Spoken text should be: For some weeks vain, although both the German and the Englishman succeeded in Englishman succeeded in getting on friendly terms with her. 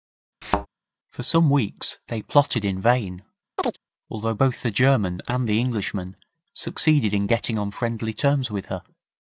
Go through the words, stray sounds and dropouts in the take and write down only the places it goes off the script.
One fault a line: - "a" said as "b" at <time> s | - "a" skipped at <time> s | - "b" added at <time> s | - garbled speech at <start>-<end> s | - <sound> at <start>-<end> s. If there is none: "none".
- thud at 0.4-0.7 s
- "they plotted in" added at 2.1 s
- chirp at 3.6-3.8 s
- "Englishman succeeded in" skipped at 7.3 s